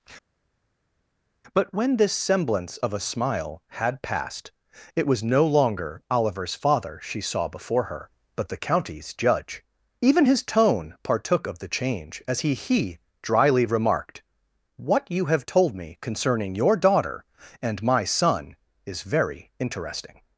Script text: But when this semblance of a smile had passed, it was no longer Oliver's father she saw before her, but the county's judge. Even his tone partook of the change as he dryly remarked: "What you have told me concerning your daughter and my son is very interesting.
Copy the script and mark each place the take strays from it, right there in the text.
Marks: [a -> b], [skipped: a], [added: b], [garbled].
But when this semblance of a smile had passed, it was no longer Oliver's father she saw before her, but the county's judge. Even his tone partook of the change as he [added: he] dryly remarked: "What you have told me concerning your daughter and my son is very interesting.